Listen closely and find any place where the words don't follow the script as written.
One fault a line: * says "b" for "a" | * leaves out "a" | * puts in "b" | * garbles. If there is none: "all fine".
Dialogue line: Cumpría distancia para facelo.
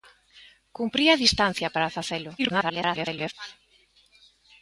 * garbles